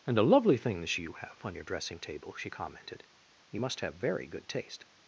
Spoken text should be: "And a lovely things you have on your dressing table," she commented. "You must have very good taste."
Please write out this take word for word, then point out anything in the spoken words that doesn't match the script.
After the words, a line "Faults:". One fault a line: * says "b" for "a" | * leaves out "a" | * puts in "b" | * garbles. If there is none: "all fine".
"And a lovely things you have on your dressing table," she commented. "You must have very good taste."
Faults:
all fine